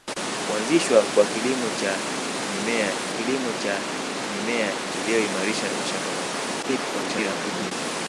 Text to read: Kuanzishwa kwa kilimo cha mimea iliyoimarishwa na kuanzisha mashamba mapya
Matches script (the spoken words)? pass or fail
fail